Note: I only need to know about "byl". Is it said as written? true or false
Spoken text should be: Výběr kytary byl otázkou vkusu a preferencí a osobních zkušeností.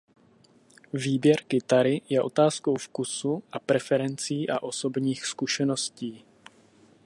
false